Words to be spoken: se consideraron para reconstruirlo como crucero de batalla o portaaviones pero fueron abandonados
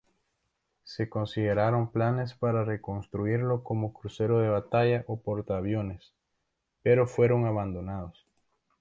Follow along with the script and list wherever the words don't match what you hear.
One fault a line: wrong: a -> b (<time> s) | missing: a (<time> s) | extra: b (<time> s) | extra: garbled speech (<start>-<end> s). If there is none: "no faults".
extra: planes (1.9 s)